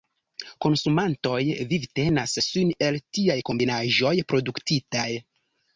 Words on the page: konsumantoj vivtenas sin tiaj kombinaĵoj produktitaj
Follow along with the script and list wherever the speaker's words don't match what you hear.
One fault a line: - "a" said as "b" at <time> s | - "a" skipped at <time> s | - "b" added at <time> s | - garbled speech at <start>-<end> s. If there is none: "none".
- "el" added at 2.9 s